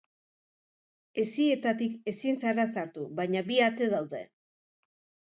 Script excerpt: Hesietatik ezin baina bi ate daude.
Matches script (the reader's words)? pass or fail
fail